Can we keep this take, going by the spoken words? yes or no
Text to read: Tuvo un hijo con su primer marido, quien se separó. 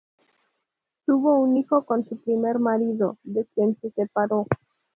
no